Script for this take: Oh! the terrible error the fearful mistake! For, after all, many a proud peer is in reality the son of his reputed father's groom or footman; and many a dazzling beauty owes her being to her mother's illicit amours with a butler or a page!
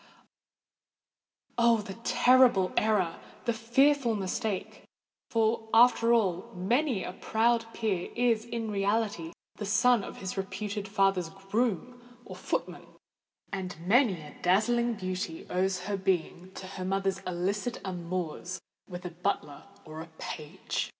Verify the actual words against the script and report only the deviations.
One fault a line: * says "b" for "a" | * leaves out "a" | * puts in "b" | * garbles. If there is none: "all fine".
all fine